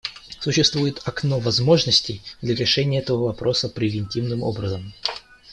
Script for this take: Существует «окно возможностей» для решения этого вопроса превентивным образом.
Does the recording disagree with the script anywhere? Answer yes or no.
no